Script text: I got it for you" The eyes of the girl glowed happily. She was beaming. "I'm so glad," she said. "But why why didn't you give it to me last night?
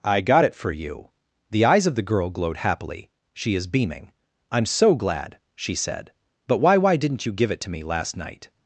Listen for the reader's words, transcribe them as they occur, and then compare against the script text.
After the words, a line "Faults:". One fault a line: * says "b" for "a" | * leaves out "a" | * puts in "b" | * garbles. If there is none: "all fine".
I got it for you" The eyes of the girl glowed happily. She is beaming. "I'm so glad," she said. "But why why didn't you give it to me last night?
Faults:
* says "is" for "was"